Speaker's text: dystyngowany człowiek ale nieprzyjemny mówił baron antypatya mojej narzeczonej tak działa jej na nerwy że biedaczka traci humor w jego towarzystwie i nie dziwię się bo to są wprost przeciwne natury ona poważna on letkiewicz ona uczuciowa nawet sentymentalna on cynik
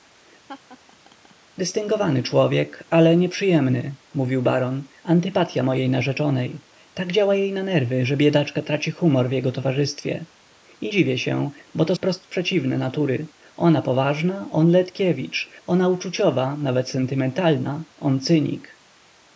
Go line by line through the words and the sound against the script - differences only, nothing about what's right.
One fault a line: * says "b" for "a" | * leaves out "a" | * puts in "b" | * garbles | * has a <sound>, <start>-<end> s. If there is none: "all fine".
* has a laugh, 0.5-1.4 s
* leaves out "nie"
* leaves out "są"